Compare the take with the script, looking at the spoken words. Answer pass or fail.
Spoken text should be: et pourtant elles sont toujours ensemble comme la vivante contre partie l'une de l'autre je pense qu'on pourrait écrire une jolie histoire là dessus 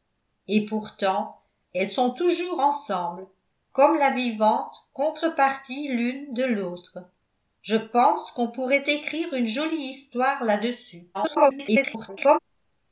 fail